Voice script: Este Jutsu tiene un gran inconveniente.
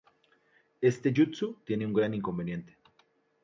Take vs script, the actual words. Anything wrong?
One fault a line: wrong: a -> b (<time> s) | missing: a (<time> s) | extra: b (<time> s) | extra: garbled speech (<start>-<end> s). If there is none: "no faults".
no faults